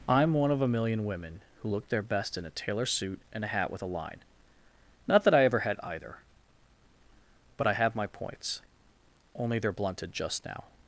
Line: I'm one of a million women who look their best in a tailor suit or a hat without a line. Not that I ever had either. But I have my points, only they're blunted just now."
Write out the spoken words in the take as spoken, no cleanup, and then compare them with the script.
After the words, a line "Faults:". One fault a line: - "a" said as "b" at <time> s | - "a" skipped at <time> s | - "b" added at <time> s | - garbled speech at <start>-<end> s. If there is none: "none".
I'm one of a million women who look their best in a tailor suit and a hat with a line. Not that I ever had either. But I have my points, only they're blunted just now."
Faults:
- "or" said as "and" at 3.3 s
- "without" said as "with" at 3.7 s